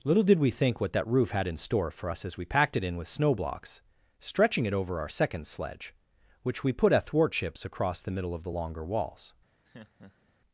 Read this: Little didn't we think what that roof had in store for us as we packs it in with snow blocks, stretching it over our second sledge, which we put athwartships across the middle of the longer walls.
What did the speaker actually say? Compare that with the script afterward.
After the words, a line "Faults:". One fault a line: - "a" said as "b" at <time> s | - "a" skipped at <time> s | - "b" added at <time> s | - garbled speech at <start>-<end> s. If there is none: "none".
Little did we think what that roof had in store for us as we packed it in with snow blocks, stretching it over our second sledge, which we put athwartships across the middle of the longer walls.
Faults:
- "didn't" said as "did" at 0.2 s
- "packs" said as "packed" at 2.4 s